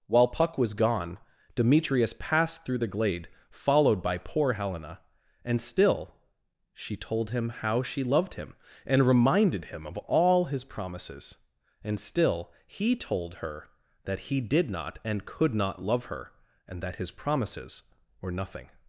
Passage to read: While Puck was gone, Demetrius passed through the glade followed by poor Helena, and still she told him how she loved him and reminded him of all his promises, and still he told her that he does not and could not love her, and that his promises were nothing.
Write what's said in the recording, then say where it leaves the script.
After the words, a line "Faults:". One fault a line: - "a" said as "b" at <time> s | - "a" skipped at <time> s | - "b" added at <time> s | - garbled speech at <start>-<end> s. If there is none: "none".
While Puck was gone, Demetrius passed through the glade followed by poor Helena, and still she told him how she loved him and reminded him of all his promises, and still he told her that he did not and could not love her, and that his promises were nothing.
Faults:
- "does" said as "did" at 14.4 s